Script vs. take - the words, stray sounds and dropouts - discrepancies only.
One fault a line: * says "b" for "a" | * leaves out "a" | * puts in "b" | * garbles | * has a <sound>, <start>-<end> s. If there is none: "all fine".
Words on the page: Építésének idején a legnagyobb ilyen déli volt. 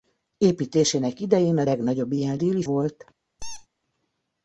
* has a squeak, 3.4-3.7 s